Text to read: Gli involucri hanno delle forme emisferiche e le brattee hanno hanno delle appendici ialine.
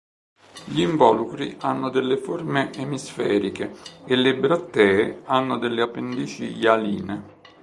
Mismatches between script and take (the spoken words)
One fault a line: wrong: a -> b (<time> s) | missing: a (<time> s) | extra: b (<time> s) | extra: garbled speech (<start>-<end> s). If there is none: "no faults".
missing: hanno (5.6 s)